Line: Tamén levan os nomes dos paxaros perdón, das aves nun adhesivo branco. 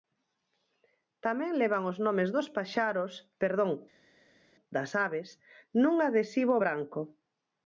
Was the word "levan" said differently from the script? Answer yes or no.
no